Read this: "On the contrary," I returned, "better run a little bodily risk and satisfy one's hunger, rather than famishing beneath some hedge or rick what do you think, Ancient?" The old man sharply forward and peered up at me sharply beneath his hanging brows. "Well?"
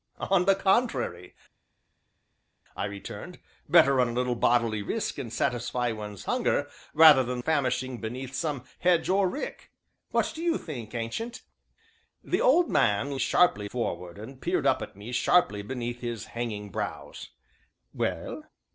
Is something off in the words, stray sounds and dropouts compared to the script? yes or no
no